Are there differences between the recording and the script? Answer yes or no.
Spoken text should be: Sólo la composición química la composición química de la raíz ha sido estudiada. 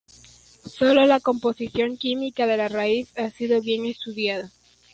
yes